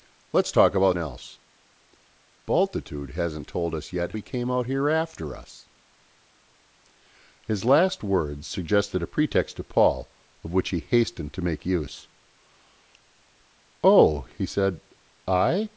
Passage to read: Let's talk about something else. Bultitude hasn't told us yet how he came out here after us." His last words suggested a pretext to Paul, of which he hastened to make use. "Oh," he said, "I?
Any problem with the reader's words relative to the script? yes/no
yes